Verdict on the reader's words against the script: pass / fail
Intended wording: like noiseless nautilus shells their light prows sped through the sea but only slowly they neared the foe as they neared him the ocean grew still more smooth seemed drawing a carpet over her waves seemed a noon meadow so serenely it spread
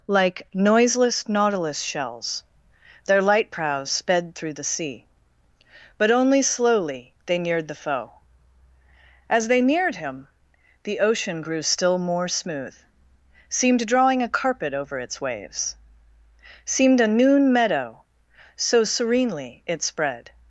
fail